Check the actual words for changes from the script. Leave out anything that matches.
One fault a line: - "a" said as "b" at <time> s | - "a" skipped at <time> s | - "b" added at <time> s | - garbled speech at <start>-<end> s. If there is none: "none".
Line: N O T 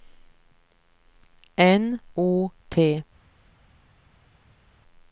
none